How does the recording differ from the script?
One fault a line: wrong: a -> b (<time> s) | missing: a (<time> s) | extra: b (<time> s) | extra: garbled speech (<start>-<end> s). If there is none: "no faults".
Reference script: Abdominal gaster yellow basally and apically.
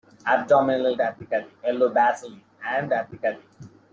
wrong: gaster -> apically (1.0 s)